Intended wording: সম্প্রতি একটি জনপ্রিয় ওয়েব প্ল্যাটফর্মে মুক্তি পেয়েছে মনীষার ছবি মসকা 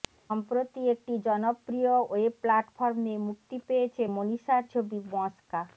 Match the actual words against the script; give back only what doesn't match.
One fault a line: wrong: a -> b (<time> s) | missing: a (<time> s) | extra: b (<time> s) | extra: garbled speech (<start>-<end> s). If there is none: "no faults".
no faults